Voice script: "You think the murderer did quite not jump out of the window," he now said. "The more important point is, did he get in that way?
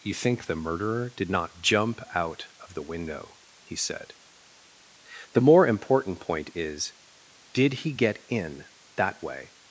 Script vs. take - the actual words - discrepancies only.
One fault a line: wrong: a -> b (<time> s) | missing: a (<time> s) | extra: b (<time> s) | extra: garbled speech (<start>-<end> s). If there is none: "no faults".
missing: quite (1.3 s)
missing: now (3.8 s)